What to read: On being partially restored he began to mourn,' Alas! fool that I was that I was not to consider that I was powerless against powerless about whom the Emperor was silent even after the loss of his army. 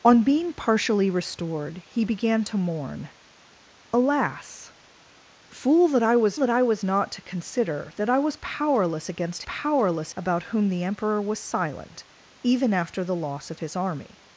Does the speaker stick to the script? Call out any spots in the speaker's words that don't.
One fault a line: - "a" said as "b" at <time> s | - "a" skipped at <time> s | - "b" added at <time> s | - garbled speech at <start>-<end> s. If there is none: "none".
none